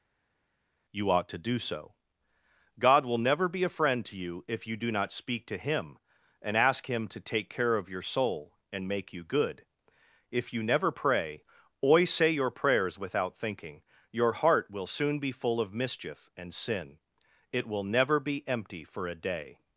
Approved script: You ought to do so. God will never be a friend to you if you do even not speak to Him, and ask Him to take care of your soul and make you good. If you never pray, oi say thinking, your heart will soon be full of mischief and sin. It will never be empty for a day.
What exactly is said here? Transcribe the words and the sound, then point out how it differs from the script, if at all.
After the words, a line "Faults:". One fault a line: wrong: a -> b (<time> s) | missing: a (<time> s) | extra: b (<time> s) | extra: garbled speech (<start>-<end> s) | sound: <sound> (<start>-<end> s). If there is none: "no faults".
You ought to do so. God will never be a friend to you if you do not speak to Him, and ask Him to take care of your soul and make you good. If you never pray, oi say your prayers without thinking, your heart will soon be full of mischief and sin. It will never be empty for a day.
Faults:
missing: even (4.9 s)
extra: your prayers without (12.3 s)